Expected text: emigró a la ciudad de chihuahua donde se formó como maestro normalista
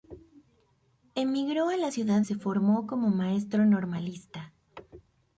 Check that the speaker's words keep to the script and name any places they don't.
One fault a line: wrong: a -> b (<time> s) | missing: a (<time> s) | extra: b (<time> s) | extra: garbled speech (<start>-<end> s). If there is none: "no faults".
missing: de chihuahua donde (2.2 s)